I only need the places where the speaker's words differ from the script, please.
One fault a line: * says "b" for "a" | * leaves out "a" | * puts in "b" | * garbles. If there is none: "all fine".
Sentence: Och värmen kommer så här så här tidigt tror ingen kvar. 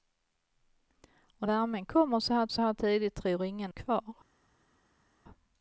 all fine